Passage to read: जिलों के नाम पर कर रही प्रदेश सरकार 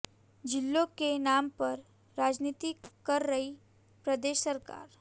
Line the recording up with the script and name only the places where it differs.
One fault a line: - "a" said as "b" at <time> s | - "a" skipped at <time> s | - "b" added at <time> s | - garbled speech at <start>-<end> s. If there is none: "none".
- "राजनीति" added at 2.2 s